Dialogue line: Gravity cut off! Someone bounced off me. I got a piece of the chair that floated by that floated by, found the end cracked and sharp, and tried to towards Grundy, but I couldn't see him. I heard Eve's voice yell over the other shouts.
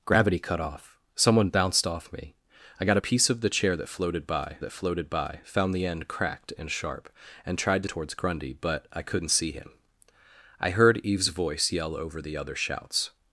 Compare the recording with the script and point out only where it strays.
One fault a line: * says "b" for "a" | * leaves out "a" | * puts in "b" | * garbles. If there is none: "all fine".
all fine